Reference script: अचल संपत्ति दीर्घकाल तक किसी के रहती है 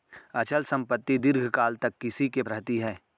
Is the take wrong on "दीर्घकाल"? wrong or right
right